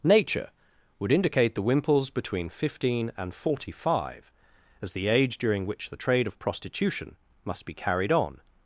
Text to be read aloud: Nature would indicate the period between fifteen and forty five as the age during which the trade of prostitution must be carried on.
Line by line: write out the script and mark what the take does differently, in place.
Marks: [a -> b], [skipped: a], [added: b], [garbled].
Nature would indicate the [period -> wimples] between fifteen and forty five as the age during which the trade of prostitution must be carried on.